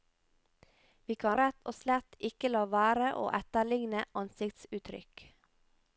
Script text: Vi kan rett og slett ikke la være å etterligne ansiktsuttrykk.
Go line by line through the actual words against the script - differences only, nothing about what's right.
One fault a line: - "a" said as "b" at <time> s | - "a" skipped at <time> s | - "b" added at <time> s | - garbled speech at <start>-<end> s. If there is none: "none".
none